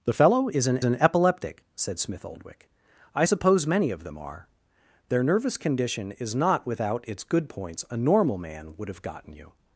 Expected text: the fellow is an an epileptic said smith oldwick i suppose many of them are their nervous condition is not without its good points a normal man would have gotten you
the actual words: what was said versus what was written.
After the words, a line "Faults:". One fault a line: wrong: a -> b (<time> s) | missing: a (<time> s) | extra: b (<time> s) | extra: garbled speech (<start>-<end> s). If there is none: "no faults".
the fellow is an an epileptic said smith oldwick i suppose many of them are their nervous condition is not without its good points a normal man would have gotten you
Faults:
no faults